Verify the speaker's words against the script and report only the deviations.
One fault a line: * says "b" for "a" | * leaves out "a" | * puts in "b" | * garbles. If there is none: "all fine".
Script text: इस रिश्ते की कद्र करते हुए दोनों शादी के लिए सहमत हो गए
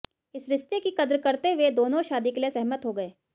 all fine